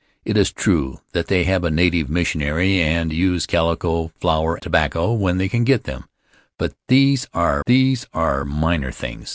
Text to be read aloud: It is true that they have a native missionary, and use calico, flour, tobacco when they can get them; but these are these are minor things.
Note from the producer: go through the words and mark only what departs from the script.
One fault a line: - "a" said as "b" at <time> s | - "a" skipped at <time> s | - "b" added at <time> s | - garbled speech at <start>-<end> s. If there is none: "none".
none